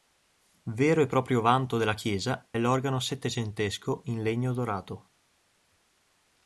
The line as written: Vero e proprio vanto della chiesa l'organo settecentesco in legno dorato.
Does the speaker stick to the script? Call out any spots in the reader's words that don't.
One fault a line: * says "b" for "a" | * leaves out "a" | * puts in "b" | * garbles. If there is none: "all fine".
all fine